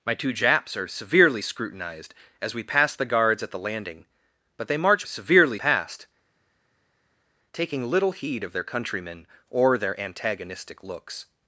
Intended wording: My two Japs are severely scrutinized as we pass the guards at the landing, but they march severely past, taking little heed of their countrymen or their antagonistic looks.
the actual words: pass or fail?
pass